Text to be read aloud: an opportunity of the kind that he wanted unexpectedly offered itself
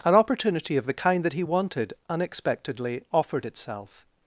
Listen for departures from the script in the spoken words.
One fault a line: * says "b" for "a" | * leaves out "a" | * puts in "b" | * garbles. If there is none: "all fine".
all fine